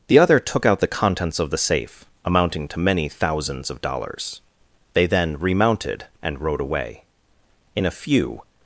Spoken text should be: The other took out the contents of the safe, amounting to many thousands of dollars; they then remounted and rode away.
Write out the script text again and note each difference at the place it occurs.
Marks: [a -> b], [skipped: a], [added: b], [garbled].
The other took out the contents of the safe, amounting to many thousands of dollars; they then remounted and rode away. [added: In a few]